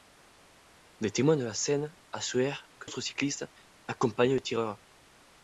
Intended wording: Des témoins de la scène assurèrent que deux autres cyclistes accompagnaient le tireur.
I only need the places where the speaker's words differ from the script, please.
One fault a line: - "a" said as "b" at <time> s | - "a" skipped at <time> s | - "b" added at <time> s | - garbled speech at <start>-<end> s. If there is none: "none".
- "deux" skipped at 2.9 s